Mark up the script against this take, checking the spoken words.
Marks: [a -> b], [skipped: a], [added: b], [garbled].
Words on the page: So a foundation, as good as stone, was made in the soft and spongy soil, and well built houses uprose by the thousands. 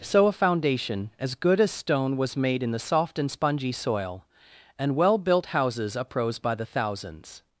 So a foundation, as good as stone, was made in the soft and spongy soil, and well built houses uprose by the thousands.